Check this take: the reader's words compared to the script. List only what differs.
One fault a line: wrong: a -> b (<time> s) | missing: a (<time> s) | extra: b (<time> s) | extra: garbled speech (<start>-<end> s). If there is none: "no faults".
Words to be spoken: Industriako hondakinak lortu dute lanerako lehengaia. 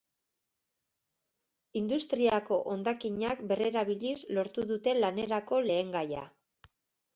extra: berrerabiliz (3.5 s)